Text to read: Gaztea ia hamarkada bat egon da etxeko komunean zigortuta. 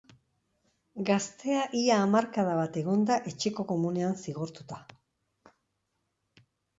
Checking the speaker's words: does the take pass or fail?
pass